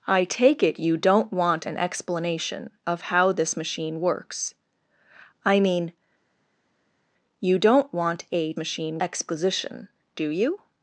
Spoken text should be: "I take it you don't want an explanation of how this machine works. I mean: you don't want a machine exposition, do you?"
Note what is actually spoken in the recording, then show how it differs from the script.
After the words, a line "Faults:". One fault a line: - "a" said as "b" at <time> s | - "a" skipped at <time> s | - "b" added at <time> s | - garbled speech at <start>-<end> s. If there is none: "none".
"I take it you don't want an explanation of how this machine works. I mean: you don't want a machine exposition, do you?"
Faults:
none